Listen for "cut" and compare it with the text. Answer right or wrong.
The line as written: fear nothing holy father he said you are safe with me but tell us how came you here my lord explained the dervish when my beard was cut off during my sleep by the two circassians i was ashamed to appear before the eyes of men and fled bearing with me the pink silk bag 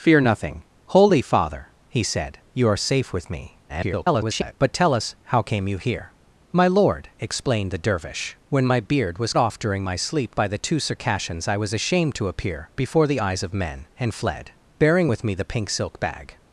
wrong